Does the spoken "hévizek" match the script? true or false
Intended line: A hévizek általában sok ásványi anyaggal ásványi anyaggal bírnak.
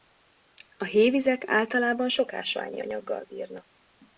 true